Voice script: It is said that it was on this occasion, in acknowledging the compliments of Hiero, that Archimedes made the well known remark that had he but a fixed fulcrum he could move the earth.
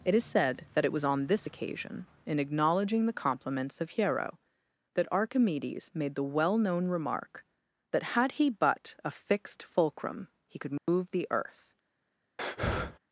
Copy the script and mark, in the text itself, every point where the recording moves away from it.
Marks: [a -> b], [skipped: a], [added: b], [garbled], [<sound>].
It is said that it was on this occasion, in acknowledging the compliments of Hiero, that Archimedes made the well known remark that had he but a fixed fulcrum he could move [dropout] the earth. [breath]